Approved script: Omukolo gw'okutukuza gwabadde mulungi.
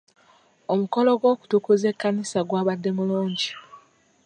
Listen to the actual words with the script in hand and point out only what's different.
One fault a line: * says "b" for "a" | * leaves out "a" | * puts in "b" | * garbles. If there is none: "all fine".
* puts in "ekkanisa"